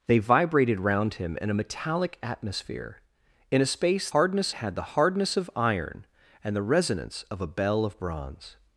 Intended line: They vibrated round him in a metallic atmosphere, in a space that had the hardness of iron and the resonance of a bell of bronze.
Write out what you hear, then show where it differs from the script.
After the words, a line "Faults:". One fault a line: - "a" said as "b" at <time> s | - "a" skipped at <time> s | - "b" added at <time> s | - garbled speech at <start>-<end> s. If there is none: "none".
They vibrated round him in a metallic atmosphere, in a space hardness had the hardness of iron and the resonance of a bell of bronze.
Faults:
- "that" said as "hardness" at 4.1 s